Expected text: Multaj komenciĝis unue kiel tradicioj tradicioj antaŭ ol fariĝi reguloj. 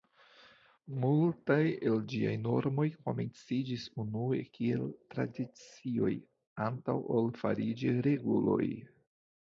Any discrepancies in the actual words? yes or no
yes